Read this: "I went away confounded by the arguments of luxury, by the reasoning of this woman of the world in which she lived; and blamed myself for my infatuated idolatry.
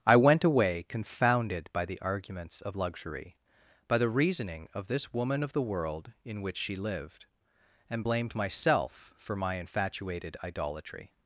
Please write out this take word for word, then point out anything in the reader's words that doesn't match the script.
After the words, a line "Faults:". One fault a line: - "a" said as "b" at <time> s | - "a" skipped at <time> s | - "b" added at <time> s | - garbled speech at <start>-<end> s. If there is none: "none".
"I went away confounded by the arguments of luxury, by the reasoning of this woman of the world in which she lived; and blamed myself for my infatuated idolatry.
Faults:
none